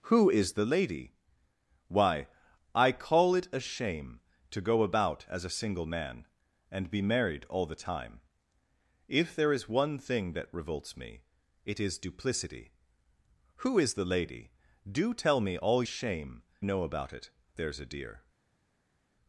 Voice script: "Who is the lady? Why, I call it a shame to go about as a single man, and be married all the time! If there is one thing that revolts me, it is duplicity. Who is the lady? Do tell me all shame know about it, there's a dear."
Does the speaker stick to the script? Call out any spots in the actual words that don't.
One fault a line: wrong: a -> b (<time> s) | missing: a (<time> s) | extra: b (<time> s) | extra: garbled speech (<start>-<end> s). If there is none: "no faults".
no faults